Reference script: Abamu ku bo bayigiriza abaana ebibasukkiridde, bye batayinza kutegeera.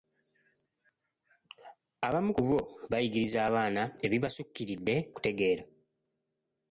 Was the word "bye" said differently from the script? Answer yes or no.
yes